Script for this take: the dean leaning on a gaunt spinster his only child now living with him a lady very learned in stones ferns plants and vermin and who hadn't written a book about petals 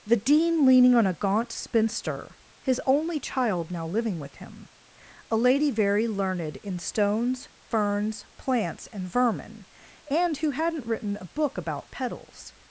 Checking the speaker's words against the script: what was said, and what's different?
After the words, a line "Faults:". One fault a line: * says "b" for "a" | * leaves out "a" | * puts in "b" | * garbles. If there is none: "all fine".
the dean leaning on a gaunt spinster his only child now living with him a lady very learned in stones ferns plants and vermin and who hadn't written a book about petals
Faults:
all fine